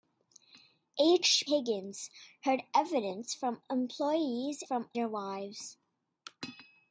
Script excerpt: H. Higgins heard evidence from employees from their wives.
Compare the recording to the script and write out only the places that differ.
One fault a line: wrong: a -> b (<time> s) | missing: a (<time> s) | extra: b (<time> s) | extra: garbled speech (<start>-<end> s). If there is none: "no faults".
no faults